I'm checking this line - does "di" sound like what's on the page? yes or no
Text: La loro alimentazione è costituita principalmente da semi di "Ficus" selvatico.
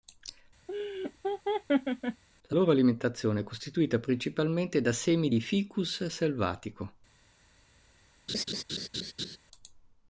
yes